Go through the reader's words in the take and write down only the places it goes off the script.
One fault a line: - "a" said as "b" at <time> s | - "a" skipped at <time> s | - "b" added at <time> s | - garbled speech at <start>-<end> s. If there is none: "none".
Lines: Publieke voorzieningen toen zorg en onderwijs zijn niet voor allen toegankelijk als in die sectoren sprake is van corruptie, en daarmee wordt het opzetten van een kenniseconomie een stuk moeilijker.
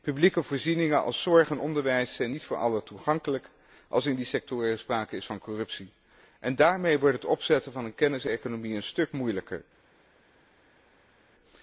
- "toen" said as "als" at 1.0 s